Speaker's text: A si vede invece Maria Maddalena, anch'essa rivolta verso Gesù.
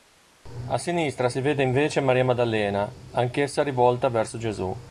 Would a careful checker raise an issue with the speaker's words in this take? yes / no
yes